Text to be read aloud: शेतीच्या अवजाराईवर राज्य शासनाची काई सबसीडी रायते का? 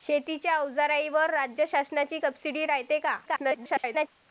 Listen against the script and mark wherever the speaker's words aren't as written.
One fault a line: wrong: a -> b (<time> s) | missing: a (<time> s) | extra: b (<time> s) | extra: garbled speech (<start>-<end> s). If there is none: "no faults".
missing: काई (2.2 s)
extra: garbled speech (3.3-4.1 s)